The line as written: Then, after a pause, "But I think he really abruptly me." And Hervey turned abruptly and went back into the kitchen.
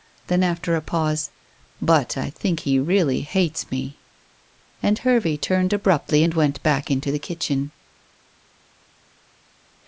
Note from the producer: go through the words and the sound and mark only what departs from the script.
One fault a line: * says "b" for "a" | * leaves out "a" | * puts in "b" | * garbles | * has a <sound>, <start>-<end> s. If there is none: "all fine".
* says "hates" for "abruptly"